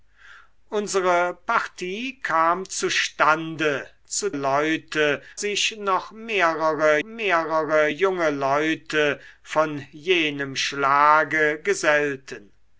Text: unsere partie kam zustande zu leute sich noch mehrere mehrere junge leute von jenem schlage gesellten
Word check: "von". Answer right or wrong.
right